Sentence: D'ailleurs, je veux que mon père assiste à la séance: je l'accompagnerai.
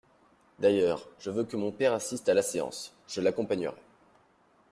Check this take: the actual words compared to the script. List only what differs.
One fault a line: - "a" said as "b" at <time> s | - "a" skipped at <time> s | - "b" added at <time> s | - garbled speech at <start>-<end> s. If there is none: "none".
none